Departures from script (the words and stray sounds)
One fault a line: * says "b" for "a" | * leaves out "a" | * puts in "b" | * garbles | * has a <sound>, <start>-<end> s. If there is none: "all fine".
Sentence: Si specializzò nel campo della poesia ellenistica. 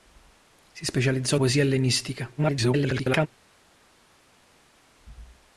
* leaves out "nel campo della"
* garbles